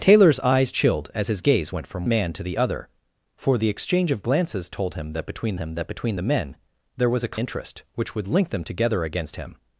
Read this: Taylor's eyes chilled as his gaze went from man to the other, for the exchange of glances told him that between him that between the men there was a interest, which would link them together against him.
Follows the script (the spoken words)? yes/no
yes